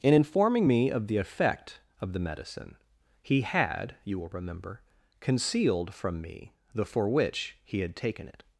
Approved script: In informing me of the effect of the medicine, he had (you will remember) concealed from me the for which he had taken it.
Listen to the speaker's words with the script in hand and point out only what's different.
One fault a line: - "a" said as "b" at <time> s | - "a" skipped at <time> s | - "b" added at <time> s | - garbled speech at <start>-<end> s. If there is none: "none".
none